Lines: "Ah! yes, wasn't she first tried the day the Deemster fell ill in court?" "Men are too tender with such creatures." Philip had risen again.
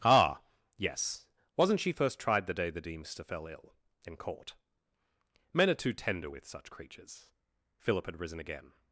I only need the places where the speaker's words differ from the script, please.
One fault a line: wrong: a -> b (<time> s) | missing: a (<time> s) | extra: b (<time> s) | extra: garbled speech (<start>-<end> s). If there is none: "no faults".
no faults